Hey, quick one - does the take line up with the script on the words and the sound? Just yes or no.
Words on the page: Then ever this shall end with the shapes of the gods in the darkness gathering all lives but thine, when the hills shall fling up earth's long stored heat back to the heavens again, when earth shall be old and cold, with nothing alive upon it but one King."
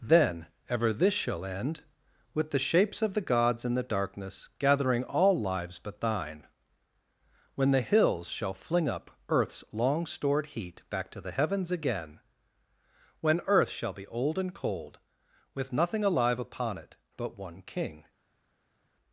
yes